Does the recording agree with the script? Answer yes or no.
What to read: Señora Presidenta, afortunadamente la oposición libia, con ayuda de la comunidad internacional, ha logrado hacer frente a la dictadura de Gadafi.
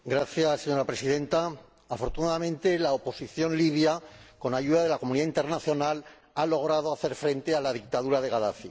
yes